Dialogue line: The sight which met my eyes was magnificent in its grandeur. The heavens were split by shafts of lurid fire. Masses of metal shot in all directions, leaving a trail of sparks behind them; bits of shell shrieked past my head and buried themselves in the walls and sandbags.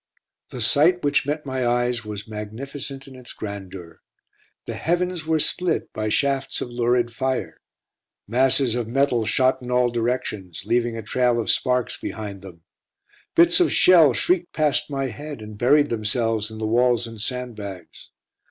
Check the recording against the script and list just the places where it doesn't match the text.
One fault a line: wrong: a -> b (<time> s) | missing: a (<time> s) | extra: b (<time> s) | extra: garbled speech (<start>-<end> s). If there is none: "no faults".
no faults